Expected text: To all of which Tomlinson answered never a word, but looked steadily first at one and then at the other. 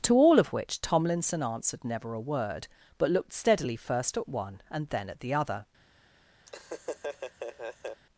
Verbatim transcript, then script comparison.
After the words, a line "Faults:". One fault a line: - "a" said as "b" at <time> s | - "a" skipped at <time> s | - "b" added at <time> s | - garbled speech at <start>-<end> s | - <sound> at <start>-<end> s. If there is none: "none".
To all of which Tomlinson answered never a word, but looked steadily first at one and then at the other.
Faults:
- laugh at 6.5-8.0 s